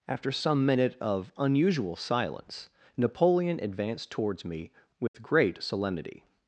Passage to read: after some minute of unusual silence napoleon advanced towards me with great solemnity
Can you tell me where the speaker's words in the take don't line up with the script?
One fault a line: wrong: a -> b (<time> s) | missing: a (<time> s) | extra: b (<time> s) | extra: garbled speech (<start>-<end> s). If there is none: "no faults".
no faults